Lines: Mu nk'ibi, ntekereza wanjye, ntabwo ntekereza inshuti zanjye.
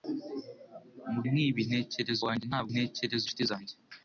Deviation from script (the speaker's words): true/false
false